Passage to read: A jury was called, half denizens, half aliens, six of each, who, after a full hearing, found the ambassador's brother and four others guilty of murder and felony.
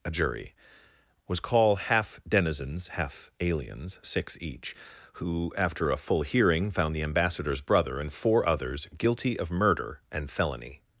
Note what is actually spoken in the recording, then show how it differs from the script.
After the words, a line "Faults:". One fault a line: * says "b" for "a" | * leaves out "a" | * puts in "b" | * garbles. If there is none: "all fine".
A jury was call, half denizens, half aliens, six each, who, after a full hearing, found the ambassador's brother and four others guilty of murder and felony.
Faults:
* says "call" for "called"
* leaves out "of"